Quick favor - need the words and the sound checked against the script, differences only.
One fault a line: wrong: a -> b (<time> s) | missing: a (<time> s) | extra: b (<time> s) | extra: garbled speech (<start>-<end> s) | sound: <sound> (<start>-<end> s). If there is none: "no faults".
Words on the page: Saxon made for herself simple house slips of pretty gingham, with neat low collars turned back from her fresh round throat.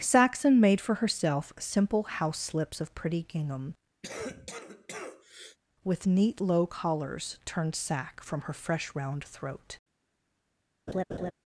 sound: cough (4.0-5.6 s)
wrong: back -> sack (7.7 s)
sound: laugh (10.9-11.3 s)